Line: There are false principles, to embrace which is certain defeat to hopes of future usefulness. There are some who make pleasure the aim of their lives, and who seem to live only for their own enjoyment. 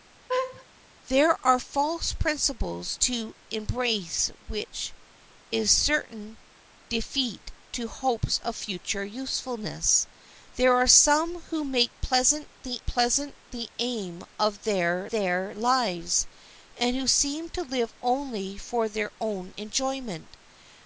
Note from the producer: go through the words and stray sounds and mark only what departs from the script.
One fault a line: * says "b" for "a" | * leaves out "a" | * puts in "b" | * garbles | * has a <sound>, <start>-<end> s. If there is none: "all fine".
* has a laugh, 0.3-0.7 s
* puts in "pleasure the"
* puts in "their"